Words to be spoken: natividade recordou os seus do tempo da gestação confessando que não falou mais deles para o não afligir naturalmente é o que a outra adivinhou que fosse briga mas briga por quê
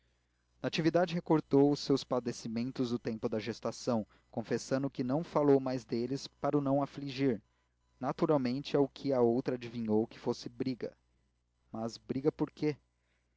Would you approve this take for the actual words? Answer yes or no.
no